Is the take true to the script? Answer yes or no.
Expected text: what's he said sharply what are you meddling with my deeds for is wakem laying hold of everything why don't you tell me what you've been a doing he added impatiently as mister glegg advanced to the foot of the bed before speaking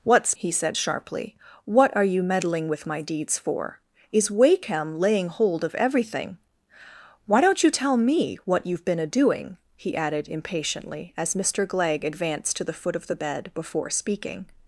yes